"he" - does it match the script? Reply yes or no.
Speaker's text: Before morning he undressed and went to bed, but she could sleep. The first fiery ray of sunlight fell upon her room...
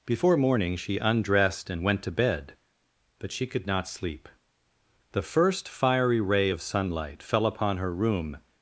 no